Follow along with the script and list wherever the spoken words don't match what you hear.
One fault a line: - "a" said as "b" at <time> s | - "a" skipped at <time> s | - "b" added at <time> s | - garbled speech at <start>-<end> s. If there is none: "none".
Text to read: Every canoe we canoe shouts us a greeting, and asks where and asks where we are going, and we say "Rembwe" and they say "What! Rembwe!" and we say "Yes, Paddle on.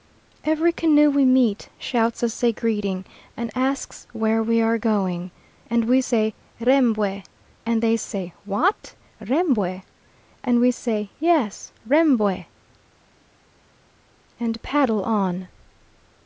- "canoe" said as "meet" at 1.2 s
- "and asks where" skipped at 4.4 s
- "Rembwe and" added at 11.9 s